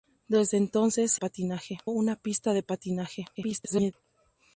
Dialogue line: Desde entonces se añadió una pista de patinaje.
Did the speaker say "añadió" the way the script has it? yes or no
no